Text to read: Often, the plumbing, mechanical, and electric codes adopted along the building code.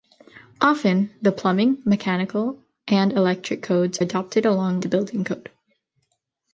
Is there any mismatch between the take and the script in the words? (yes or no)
no